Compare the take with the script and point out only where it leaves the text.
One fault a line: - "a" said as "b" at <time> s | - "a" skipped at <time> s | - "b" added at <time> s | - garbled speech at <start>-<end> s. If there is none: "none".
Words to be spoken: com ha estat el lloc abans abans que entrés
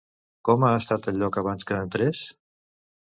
- "abans" skipped at 1.7 s